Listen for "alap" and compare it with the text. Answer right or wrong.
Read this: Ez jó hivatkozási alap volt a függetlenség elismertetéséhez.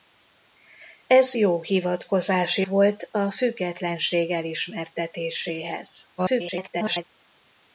wrong